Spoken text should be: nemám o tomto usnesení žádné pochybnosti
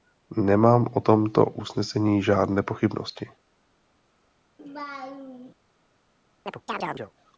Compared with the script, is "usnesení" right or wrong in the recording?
right